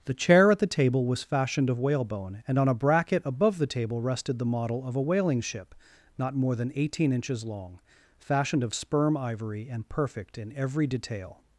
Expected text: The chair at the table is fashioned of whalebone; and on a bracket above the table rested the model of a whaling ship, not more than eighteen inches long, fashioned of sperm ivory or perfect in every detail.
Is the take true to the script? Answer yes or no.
no